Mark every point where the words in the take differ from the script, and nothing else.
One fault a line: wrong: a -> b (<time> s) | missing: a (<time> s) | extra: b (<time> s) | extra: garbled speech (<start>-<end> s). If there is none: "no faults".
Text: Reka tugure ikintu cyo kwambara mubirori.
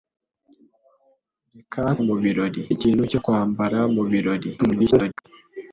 wrong: tugure -> mubirori (2.1 s)
extra: garbled speech (4.6-5.3 s)